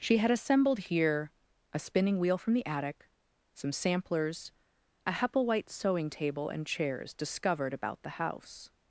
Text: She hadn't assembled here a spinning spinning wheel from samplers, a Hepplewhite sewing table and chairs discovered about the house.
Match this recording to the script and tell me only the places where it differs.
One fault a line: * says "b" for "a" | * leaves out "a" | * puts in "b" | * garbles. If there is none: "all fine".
* says "had" for "hadn't"
* leaves out "spinning"
* puts in "the attic some"